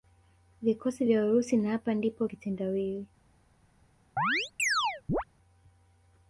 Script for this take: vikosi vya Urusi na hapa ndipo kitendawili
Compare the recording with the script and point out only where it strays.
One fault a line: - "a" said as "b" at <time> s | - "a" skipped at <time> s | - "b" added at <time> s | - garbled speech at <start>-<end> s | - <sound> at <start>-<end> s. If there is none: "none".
- chirp at 4.2-5.2 s